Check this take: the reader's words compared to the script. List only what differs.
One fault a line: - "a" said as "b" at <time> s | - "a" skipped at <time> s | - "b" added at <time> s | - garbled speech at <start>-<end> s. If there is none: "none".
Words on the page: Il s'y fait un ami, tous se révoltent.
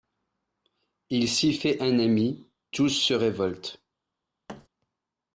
none